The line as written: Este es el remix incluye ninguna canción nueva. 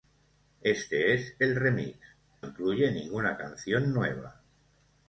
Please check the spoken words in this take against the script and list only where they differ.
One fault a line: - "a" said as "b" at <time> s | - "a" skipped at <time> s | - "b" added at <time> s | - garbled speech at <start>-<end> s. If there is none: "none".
none